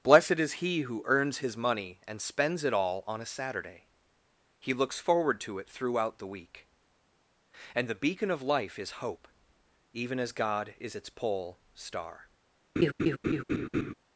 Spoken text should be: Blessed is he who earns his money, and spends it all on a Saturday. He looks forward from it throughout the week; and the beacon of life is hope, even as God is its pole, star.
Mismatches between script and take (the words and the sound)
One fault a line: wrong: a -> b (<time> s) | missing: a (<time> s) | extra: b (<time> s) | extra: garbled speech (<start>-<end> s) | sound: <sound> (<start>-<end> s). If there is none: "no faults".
wrong: from -> to (5.4 s)
sound: laugh (12.8-13.9 s)